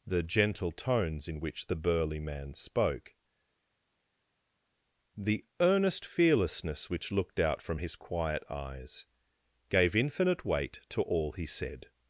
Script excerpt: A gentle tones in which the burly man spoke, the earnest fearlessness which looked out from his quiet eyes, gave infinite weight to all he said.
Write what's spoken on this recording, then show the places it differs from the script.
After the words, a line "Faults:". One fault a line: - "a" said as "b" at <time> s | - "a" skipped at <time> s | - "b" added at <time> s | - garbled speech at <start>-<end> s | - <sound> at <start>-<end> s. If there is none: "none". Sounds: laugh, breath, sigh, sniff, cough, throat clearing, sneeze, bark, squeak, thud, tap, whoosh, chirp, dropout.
The gentle tones in which the burly man spoke, the earnest fearlessness which looked out from his quiet eyes, gave infinite weight to all he said.
Faults:
- "A" said as "The" at 0.1 s